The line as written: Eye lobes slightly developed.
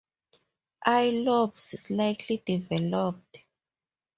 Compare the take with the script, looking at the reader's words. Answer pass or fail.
pass